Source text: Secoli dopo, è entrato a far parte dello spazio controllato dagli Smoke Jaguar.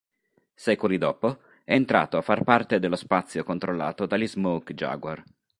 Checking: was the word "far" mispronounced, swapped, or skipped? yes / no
no